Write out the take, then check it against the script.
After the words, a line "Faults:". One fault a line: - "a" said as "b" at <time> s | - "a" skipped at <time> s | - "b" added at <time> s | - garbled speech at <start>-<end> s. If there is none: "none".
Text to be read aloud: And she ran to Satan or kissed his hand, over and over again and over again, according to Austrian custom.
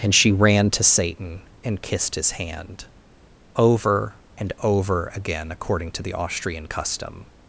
And she ran to Satan and kissed his hand, over and over again, according to the Austrian custom.
Faults:
- "or" said as "and" at 1.6 s
- "and over again" skipped at 5.5 s
- "the" added at 6.0 s